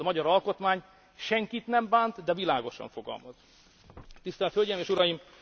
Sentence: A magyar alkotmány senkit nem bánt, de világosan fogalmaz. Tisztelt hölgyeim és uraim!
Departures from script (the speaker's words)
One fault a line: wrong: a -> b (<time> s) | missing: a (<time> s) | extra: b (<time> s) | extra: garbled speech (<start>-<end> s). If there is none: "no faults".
no faults